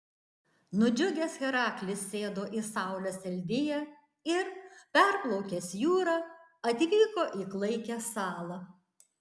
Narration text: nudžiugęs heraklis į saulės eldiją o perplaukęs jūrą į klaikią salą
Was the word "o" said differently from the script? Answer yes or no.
yes